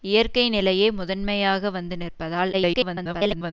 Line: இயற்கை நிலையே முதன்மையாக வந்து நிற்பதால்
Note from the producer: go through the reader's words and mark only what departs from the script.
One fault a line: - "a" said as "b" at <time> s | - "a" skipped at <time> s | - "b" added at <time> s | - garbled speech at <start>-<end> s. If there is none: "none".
- garbled speech at 2.5-3.5 s